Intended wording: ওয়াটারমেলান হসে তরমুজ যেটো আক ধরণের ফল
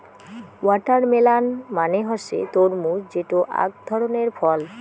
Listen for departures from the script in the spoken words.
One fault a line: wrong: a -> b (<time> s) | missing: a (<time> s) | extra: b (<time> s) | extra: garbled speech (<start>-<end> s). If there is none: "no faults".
extra: মানে (1.8 s)